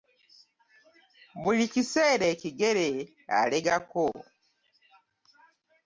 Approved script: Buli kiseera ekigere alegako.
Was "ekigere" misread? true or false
false